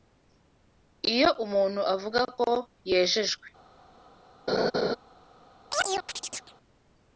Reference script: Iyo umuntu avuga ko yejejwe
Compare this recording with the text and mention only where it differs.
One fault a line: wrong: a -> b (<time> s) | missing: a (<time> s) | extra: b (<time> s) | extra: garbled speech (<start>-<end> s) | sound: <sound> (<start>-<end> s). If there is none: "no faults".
sound: laugh (4.5-5.0 s)
sound: chirp (5.7-6.5 s)